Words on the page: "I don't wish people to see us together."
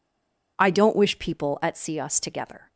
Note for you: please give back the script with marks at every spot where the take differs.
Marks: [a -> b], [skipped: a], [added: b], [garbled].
"I don't wish people [to -> at] see us together."